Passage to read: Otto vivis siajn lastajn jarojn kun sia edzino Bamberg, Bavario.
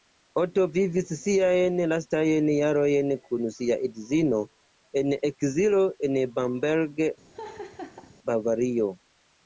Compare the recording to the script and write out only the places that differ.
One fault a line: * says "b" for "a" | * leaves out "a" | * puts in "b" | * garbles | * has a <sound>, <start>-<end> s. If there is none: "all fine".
* puts in "en ekzilo en"
* has a laugh, 7.3-8.1 s